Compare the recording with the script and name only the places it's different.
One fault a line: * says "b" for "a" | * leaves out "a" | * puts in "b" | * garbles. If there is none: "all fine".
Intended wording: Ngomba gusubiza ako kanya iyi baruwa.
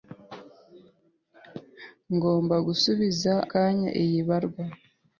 * leaves out "ako"